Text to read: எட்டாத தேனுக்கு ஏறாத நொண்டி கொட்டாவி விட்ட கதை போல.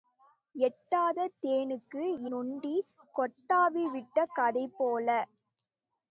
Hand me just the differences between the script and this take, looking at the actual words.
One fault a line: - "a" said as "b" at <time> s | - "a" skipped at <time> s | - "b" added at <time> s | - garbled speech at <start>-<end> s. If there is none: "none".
- "ஏறாத" skipped at 2.0 s